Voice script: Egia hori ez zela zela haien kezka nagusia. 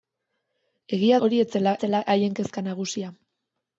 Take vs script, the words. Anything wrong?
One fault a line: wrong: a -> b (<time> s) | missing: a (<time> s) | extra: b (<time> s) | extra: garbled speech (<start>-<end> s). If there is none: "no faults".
no faults